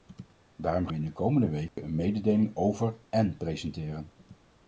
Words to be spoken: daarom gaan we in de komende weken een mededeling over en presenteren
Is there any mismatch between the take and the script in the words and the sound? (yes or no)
yes